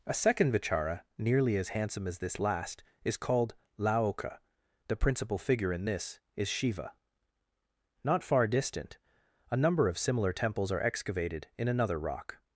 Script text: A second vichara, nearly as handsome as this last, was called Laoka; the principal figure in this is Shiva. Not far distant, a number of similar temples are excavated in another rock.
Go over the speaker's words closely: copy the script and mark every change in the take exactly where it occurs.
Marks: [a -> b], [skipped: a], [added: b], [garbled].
A second vichara, nearly as handsome as this last, [was -> is] called Laoka; the principal figure in this is Shiva. Not far distant, a number of similar temples are excavated in another rock.